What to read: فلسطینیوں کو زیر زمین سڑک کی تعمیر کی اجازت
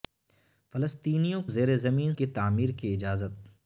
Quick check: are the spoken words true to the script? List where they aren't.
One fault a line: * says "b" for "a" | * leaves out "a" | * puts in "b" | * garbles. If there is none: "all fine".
* leaves out "کو"
* leaves out "سڑک"